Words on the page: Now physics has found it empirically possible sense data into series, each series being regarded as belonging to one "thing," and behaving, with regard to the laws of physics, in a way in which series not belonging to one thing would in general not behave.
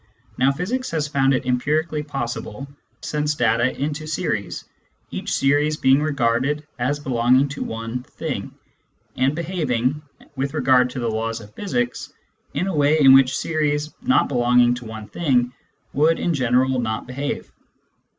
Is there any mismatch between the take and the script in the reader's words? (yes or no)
no